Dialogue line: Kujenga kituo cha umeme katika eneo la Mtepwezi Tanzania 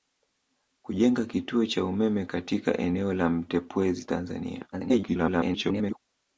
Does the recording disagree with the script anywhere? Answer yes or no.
yes